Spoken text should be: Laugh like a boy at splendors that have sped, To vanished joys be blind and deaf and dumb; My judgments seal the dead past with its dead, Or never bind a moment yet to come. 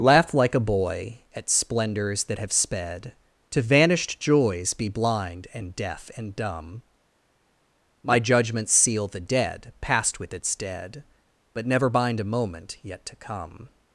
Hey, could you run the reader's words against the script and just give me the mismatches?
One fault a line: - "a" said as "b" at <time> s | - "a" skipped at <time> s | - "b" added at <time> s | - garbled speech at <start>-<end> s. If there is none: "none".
- "Or" said as "But" at 11.5 s